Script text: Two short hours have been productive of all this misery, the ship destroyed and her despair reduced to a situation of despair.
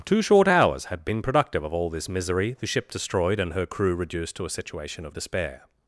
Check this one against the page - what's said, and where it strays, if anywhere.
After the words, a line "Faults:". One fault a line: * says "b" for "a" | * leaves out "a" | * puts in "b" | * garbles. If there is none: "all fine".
Two short hours had been productive of all this misery, the ship destroyed and her crew reduced to a situation of despair.
Faults:
* says "had" for "have"
* says "crew" for "despair"